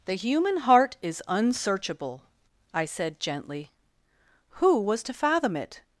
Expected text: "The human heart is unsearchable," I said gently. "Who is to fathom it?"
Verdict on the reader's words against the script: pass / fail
fail